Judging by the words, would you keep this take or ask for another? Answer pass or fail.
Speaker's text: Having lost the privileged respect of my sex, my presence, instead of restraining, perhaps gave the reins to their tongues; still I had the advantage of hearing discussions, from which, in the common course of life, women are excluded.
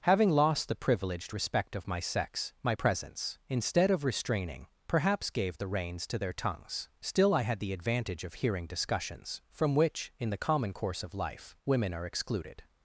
pass